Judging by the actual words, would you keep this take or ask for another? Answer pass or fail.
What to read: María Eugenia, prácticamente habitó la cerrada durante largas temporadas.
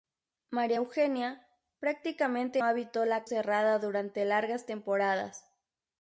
pass